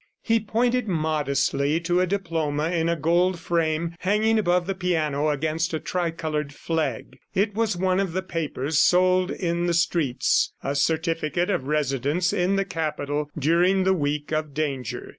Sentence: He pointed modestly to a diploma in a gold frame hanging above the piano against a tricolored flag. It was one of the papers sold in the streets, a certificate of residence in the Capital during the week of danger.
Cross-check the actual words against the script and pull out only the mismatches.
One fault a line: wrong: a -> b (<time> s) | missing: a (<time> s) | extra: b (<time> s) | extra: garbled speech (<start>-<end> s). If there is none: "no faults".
no faults